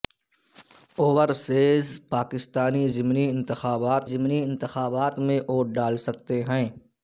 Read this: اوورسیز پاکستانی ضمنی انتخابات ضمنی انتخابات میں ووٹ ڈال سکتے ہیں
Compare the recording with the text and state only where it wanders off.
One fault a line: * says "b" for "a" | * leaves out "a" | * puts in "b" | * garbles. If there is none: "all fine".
all fine